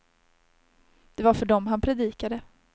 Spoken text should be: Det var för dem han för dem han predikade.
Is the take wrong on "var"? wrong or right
right